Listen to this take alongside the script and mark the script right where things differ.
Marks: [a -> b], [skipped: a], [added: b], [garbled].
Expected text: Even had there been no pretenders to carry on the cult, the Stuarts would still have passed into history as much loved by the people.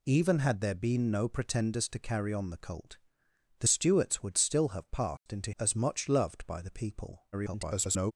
Even had there been no pretenders to carry on the cult, the Stuarts would still have passed into [skipped: history] as much loved by the people. [garbled]